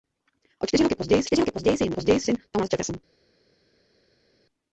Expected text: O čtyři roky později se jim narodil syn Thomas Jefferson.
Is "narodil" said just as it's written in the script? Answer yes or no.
no